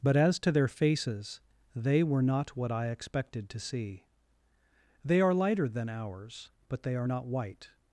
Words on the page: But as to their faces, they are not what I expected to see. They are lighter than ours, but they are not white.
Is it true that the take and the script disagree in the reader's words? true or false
true